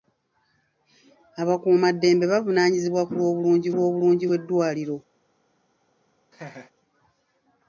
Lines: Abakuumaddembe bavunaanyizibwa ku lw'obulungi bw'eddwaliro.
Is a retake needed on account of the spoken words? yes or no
yes